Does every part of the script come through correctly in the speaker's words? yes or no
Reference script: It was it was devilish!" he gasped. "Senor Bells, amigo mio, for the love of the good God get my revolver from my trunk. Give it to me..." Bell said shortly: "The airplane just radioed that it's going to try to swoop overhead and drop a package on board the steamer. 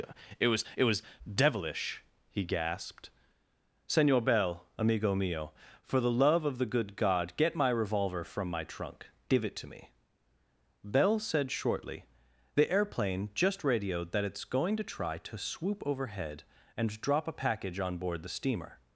no